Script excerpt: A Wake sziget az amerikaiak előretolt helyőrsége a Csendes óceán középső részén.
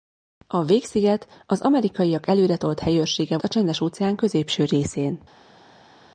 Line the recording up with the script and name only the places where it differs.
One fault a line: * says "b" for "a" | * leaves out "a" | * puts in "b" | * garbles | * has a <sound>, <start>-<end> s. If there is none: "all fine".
all fine